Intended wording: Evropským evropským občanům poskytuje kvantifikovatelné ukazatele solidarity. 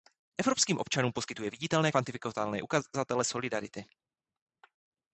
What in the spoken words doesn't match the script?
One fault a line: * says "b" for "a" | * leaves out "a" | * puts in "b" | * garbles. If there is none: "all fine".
* leaves out "evropským"
* puts in "viditelné"